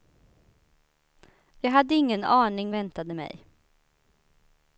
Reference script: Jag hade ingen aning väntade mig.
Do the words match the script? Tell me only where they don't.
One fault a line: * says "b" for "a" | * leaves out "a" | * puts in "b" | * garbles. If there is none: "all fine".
all fine